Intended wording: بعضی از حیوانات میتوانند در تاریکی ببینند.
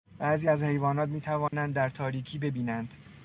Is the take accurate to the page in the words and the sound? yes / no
no